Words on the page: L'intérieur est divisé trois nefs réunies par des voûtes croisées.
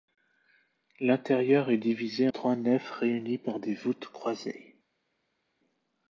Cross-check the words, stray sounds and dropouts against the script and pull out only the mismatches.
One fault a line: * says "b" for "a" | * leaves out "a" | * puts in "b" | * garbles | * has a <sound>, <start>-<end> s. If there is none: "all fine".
all fine